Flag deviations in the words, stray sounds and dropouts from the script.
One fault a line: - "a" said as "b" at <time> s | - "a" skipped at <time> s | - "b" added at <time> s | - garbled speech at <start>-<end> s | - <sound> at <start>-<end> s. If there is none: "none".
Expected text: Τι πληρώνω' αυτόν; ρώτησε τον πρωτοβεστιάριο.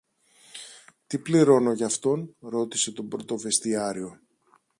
- "γι" added at 1.7 s